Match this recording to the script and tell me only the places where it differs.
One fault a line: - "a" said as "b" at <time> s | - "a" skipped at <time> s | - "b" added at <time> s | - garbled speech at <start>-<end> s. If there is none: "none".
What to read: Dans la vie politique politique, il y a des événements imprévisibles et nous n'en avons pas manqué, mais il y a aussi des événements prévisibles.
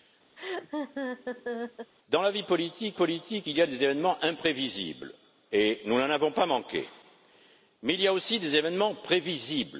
none